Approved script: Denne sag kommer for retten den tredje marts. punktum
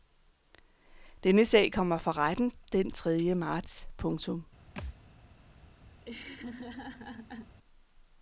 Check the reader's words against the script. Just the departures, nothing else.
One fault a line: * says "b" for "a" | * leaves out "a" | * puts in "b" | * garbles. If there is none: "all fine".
all fine